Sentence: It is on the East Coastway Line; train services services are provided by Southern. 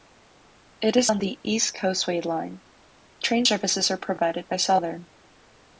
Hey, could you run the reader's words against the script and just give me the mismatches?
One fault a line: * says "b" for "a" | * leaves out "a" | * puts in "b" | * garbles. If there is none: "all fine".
* leaves out "services"